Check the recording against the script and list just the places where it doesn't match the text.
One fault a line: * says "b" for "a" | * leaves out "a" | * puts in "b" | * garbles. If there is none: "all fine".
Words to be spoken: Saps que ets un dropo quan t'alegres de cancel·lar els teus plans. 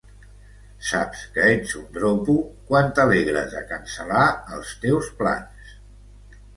all fine